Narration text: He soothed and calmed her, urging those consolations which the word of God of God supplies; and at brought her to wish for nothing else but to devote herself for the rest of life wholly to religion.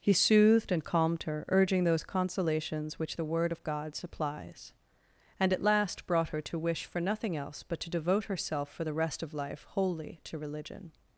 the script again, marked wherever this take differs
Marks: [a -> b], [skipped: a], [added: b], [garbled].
He soothed and calmed her, urging those consolations which the word of God [skipped: of God] supplies; and at [added: last] brought her to wish for nothing else but to devote herself for the rest of life wholly to religion.